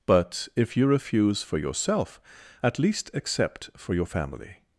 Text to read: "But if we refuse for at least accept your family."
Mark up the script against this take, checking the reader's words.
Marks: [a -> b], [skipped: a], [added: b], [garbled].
"But if [we -> you] refuse for [added: yourself] at least accept [added: for] your family."